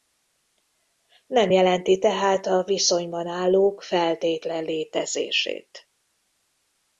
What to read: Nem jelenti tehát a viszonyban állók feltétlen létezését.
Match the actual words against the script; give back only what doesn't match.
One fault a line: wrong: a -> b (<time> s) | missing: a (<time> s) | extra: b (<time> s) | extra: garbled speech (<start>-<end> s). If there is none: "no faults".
no faults